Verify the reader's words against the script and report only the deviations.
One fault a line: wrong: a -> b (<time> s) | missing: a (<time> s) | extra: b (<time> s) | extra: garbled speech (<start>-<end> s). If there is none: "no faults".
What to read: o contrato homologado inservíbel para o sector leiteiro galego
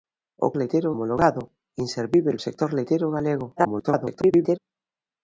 wrong: contrato -> leiteiro (0.6 s)
missing: para (2.4 s)
extra: garbled speech (3.6-4.6 s)